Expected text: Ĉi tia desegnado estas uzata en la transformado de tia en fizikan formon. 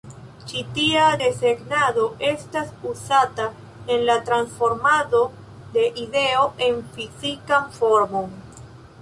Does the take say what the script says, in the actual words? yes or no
no